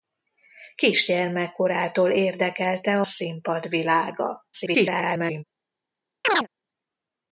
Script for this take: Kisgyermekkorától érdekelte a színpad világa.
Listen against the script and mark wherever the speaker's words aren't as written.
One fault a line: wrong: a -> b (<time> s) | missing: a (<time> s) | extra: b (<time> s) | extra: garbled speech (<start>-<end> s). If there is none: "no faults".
missing: a (3.0 s)
extra: garbled speech (4.5-5.4 s)